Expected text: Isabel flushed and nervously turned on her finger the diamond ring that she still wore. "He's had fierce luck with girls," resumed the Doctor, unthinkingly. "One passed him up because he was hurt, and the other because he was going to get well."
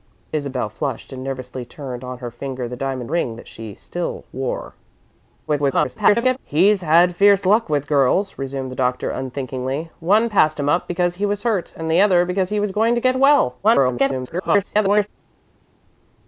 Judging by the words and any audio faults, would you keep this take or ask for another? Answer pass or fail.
fail